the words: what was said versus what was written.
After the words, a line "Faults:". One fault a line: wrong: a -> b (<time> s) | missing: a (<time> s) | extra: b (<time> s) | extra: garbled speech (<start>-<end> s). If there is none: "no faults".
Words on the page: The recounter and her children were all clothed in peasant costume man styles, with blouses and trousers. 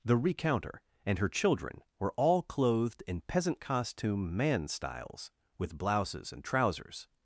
The recounter and her children were all clothed in peasant costume man styles, with blouses and trousers.
Faults:
no faults